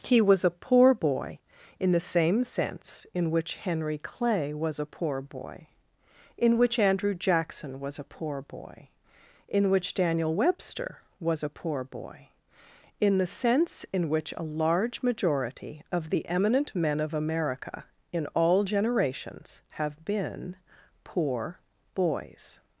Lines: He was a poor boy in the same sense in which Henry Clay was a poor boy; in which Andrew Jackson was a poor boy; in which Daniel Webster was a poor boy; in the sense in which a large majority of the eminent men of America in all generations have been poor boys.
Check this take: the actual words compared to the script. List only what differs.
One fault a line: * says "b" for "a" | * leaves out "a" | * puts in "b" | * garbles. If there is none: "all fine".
all fine